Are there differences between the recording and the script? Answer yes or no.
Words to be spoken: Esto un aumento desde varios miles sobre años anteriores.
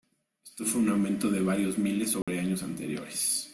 yes